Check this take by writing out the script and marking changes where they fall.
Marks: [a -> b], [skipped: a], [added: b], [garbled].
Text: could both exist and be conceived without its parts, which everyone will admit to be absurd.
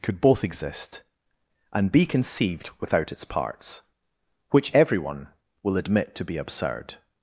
could both exist and be conceived without its parts, which everyone will admit to be absurd.